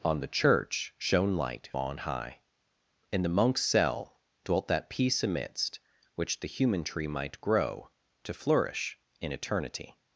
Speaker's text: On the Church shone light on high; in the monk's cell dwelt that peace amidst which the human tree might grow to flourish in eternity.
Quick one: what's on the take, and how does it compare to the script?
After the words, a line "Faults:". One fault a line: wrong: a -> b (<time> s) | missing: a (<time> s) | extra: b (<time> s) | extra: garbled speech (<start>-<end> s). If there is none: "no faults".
On the Church shone light on high; in the monk's cell dwelt that peace amidst which the human tree might grow to flourish in eternity.
Faults:
no faults